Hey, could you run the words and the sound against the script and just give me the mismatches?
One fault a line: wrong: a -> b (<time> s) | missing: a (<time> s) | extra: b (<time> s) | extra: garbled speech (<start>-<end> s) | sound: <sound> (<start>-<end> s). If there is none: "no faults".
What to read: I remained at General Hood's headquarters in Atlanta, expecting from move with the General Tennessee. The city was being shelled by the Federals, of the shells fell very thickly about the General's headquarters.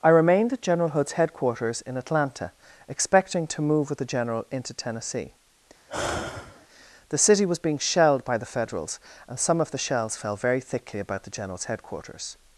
wrong: from -> to (3.5 s)
extra: into (4.5 s)
sound: sigh (5.9-6.7 s)
extra: and some (9.3 s)